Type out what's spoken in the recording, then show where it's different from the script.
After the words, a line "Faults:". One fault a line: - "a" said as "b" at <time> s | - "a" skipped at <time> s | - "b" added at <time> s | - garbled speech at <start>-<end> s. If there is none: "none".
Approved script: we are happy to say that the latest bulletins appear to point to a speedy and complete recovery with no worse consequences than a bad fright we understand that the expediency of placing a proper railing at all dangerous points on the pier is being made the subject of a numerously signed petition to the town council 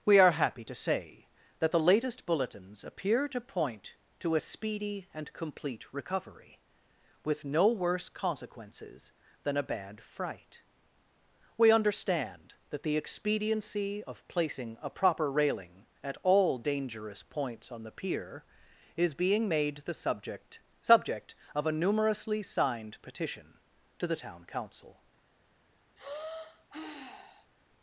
we are happy to say that the latest bulletins appear to point to a speedy and complete recovery with no worse consequences than a bad fright we understand that the expediency of placing a proper railing at all dangerous points on the pier is being made the subject subject of a numerously signed petition to the town council
Faults:
- "subject" added at 20.8 s